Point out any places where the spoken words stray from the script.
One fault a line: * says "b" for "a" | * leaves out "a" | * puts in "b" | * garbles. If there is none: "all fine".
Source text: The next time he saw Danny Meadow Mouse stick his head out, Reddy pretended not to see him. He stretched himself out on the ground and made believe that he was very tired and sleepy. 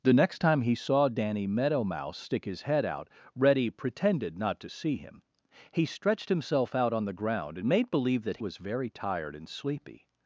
* leaves out "he"